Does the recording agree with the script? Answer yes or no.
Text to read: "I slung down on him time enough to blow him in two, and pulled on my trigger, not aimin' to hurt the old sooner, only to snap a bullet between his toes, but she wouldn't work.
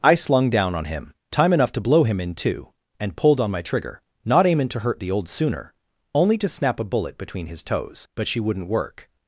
yes